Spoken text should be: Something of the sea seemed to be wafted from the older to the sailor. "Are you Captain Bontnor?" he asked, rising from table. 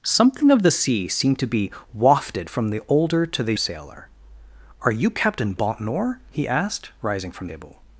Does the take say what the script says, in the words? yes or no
yes